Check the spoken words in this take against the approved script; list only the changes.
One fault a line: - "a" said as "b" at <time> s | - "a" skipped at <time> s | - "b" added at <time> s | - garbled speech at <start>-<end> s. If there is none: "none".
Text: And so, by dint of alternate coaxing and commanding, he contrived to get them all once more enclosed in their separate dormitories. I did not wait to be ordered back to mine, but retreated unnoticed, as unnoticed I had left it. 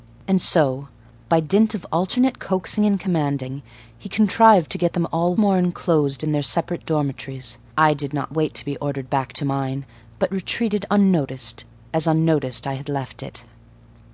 - "once" skipped at 5.3 s